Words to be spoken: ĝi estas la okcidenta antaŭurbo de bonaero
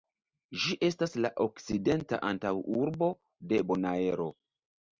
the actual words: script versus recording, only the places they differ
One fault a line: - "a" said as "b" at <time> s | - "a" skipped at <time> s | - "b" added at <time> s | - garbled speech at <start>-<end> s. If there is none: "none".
none